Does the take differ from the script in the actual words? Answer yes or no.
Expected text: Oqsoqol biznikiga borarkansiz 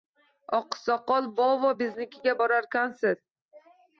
yes